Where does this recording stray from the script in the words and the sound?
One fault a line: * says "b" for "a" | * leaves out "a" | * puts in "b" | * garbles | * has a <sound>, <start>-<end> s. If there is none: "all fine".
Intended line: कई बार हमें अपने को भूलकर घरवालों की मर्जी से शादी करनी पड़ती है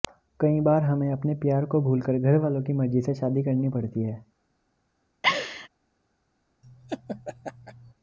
* puts in "प्यार"
* has a laugh, 5.2-5.7 s
* has a laugh, 6.6-7.9 s